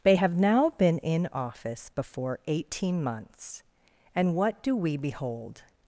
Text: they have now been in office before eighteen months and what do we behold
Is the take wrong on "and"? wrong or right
right